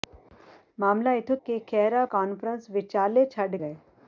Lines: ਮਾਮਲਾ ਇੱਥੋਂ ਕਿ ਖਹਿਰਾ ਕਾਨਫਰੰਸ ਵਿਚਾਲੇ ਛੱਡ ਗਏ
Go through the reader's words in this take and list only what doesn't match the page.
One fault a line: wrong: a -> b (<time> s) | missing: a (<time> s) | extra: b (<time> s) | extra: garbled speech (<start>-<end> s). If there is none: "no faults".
no faults